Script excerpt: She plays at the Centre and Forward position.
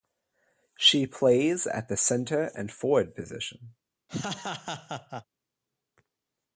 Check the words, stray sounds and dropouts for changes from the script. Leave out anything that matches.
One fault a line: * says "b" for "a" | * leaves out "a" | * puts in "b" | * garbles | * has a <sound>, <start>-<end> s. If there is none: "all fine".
* has a laugh, 4.1-5.2 s